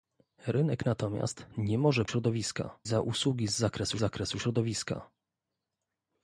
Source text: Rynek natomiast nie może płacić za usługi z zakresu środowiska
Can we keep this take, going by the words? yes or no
no